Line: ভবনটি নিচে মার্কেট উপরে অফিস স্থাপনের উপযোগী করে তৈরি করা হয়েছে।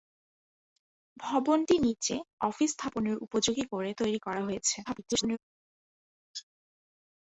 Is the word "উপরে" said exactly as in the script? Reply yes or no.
no